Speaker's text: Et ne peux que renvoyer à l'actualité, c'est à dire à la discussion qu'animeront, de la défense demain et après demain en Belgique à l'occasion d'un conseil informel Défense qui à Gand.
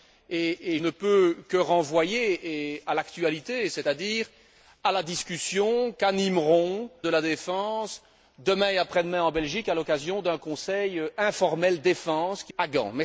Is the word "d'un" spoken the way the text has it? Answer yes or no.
yes